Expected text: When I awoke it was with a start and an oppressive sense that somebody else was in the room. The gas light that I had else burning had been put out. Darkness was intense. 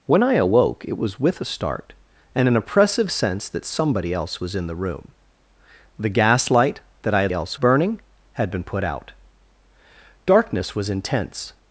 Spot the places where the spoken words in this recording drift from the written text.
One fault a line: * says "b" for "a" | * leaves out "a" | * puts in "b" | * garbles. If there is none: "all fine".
all fine